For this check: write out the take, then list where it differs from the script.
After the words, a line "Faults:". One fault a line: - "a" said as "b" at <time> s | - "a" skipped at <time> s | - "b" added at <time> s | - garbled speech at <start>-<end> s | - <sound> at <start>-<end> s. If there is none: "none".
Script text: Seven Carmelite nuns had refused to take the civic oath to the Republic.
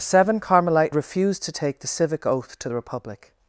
Seven Carmelite refused to take the civic oath to the Republic.
Faults:
- "nuns had" skipped at 0.9 s